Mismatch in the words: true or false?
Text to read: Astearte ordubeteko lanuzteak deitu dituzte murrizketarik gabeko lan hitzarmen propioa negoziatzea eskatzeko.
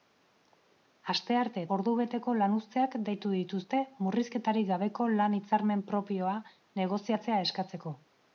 false